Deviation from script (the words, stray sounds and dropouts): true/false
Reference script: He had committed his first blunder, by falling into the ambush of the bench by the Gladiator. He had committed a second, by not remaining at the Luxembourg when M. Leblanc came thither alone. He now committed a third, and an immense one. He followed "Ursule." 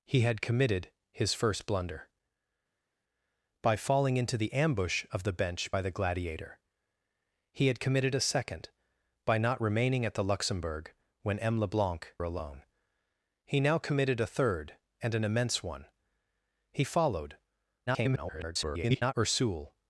true